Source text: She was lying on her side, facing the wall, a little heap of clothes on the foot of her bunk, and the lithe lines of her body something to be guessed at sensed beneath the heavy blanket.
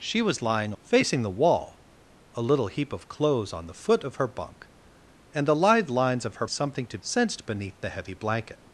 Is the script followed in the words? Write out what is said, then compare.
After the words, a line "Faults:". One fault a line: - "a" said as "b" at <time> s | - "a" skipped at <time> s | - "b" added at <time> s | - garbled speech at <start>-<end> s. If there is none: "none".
She was lying facing the wall, a little heap of clothes on the foot of her bunk, and the lithe lines of her something to sensed beneath the heavy blanket.
Faults:
- "on her side" skipped at 0.7 s
- "body" skipped at 6.4 s
- "be guessed at" skipped at 7.0 s